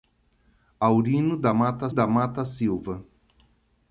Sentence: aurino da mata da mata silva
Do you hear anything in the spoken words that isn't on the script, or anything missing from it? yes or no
no